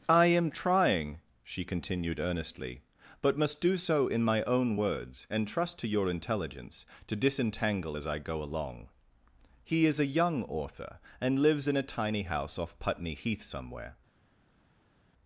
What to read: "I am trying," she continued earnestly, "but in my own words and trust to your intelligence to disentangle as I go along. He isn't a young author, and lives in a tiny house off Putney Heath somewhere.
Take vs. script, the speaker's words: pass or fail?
fail